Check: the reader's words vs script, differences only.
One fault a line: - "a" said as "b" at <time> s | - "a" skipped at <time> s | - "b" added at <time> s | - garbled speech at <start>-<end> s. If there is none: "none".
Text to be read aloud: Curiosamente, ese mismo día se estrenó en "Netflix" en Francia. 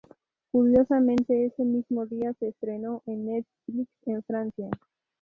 none